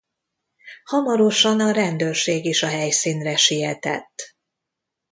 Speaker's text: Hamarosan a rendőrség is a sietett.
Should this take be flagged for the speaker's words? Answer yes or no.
yes